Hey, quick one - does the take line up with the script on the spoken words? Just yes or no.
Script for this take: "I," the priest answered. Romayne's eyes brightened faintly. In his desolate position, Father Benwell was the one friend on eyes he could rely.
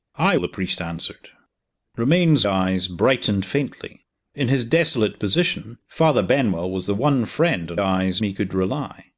yes